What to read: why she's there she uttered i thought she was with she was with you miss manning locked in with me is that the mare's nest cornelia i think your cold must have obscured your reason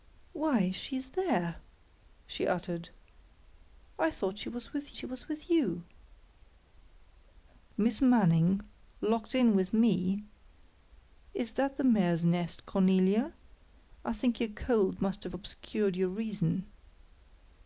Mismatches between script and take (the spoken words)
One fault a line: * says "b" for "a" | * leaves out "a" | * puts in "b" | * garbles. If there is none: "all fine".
all fine